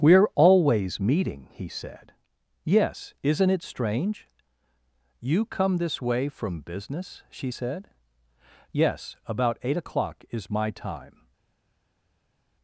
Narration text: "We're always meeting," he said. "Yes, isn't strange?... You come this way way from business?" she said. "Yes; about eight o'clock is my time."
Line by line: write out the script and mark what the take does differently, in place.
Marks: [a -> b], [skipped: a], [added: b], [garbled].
"We're always meeting," he said. "Yes, isn't [added: it] strange?... You come this way [skipped: way] from business?" she said. "Yes; about eight o'clock is my time."